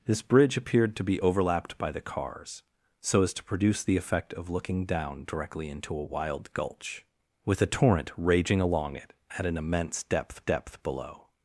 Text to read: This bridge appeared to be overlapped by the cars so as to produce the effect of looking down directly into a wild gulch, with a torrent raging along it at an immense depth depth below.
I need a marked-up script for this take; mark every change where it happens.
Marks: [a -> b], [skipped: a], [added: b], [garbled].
This bridge appeared to be overlapped by the cars so as to produce the effect of looking down directly into a wild gulch, with a torrent raging along it at an immense depth depth below.